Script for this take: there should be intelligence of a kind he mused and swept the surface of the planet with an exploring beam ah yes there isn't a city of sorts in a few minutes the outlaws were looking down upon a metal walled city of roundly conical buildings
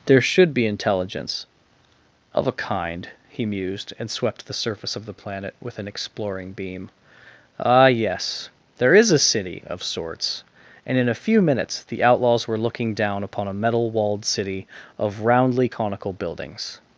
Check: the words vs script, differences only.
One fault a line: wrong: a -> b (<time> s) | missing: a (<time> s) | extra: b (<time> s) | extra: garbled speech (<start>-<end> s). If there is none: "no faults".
wrong: isn't -> is (8.9 s)
extra: and (10.9 s)